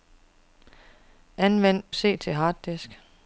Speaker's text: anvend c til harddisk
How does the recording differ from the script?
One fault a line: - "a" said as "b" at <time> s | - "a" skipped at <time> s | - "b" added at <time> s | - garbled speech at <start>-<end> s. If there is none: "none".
none